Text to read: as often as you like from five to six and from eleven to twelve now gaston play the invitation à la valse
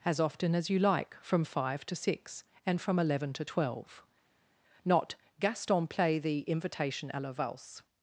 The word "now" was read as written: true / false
false